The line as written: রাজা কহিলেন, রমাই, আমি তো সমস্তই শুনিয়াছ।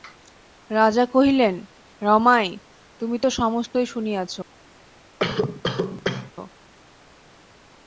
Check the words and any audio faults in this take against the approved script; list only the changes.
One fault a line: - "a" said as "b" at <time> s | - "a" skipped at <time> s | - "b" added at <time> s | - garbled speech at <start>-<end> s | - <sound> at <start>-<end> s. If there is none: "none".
- "আমি" said as "তুমি" at 3.0 s
- cough at 5.2-6.3 s